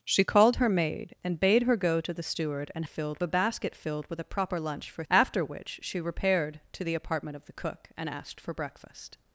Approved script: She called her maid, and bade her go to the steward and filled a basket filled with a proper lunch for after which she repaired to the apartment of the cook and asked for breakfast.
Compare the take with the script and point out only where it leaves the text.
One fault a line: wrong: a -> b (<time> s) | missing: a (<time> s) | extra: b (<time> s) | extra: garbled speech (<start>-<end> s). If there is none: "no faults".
no faults